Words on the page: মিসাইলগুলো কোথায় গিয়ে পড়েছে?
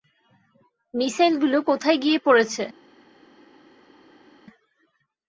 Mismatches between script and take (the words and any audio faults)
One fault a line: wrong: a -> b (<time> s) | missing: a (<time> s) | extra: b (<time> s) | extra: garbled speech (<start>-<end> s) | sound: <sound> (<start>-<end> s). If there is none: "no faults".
no faults